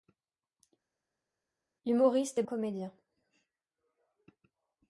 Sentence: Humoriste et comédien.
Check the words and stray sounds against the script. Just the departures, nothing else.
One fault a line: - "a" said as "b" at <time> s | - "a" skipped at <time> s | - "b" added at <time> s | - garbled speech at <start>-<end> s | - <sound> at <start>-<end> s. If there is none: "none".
none